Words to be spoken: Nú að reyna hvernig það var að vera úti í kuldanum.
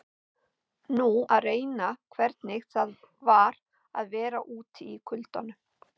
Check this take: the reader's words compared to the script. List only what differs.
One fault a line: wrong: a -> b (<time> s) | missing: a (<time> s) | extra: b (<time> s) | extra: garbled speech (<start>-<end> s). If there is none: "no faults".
no faults